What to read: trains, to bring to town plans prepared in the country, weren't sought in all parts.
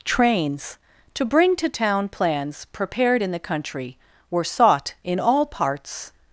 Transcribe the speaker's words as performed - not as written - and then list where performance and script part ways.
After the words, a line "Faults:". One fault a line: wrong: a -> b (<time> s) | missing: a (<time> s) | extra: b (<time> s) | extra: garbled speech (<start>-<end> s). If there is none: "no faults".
trains, to bring to town plans prepared in the country, were sought in all parts.
Faults:
wrong: weren't -> were (4.3 s)